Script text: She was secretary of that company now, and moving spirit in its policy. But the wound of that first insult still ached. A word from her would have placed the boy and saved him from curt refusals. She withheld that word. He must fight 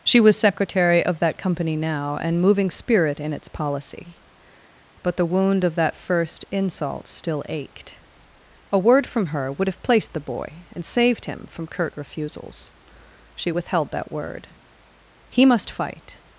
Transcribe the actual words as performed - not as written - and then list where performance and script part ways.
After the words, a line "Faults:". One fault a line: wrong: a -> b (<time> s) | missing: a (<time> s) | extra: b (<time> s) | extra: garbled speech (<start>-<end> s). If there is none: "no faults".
She was secretary of that company now, and moving spirit in its policy. But the wound of that first insult still ached. A word from her would have placed the boy and saved him from curt refusals. She withheld that word. He must fight
Faults:
no faults